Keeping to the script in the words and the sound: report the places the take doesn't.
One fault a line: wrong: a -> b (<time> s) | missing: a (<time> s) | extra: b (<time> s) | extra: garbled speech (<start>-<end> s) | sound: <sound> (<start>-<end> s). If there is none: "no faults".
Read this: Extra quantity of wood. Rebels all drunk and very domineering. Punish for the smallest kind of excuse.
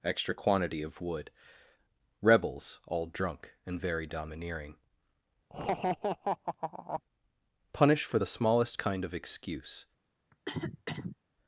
sound: laugh (5.5-7.0 s)
sound: cough (10.3-11.2 s)